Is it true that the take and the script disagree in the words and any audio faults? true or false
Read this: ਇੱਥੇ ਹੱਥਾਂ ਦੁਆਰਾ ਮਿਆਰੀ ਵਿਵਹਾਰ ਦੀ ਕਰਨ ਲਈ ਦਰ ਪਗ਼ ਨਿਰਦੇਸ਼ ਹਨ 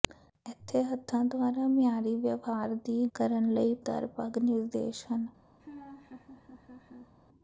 true